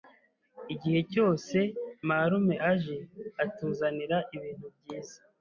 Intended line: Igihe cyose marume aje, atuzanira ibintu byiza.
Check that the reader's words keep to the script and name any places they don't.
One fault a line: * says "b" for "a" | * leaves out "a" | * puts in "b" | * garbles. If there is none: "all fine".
all fine